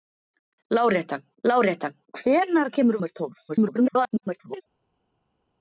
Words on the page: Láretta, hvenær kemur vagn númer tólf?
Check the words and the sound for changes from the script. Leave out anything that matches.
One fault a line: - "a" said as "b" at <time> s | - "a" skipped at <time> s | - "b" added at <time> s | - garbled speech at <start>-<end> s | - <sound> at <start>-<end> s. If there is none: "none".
- "láretta" added at 1.5 s
- "vagn" skipped at 3.0 s
- garbled speech at 3.5-4.6 s